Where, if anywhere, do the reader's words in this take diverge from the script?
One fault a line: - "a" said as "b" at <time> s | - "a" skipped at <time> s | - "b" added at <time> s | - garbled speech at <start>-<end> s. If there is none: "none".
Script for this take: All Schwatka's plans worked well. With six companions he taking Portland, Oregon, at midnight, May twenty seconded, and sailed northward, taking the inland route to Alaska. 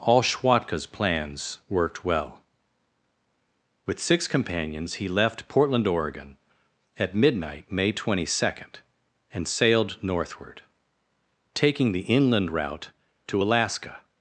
- "taking" said as "left" at 5.1 s
- "seconded" said as "second" at 8.3 s